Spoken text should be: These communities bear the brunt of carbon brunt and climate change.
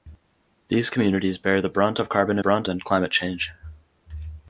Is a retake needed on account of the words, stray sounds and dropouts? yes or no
no